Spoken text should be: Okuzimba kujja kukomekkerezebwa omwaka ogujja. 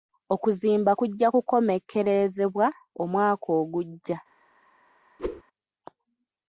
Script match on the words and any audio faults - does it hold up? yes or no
no